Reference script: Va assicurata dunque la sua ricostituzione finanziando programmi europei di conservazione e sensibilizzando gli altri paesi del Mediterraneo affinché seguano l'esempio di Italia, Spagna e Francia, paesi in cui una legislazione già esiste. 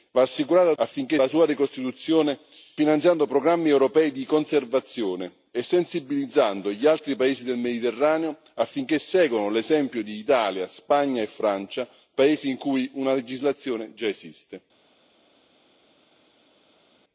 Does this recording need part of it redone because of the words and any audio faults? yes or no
yes